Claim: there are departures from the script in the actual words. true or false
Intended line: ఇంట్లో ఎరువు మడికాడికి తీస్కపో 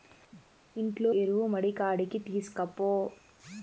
false